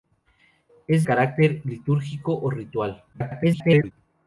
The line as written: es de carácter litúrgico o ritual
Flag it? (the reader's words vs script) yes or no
yes